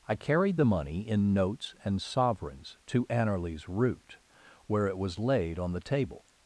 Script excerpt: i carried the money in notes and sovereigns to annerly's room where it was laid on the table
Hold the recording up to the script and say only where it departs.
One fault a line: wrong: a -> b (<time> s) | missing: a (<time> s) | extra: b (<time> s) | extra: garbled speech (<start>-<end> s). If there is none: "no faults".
wrong: room -> root (3.7 s)